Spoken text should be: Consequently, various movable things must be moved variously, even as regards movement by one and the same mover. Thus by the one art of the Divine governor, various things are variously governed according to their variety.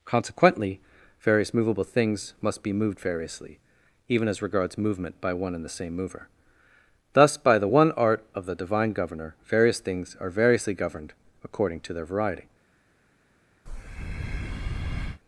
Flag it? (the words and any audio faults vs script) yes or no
yes